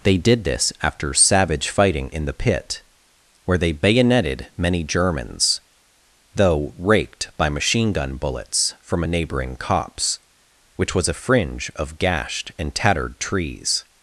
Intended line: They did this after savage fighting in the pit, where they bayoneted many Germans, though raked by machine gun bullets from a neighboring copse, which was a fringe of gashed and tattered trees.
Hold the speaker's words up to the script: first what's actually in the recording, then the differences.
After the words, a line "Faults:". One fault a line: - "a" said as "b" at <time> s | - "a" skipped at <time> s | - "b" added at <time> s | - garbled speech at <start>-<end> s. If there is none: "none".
They did this after savage fighting in the pit, where they bayoneted many Germans, though raked by machine gun bullets from a neighboring copse, which was a fringe of gashed and tattered trees.
Faults:
none